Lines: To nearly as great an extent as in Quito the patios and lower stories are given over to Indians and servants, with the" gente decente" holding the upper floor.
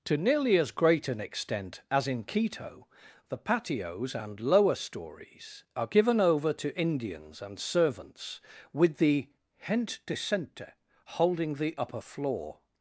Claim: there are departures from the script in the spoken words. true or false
false